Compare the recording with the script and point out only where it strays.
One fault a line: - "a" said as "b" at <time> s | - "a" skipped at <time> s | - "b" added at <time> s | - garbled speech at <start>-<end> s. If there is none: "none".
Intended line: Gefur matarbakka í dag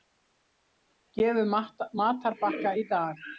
none